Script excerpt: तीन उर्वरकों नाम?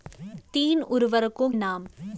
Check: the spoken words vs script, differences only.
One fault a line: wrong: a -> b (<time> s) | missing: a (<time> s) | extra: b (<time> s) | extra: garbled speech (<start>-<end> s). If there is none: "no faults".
no faults